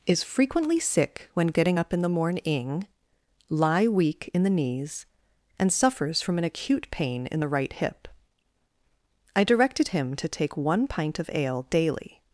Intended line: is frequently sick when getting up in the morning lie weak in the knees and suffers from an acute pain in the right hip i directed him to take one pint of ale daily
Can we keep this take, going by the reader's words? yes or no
yes